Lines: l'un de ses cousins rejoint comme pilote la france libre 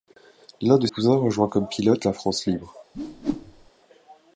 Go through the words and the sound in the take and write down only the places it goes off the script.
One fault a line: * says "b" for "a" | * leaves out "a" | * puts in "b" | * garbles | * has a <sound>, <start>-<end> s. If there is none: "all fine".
* leaves out "ses"
* has a whoosh, 2.9-3.7 s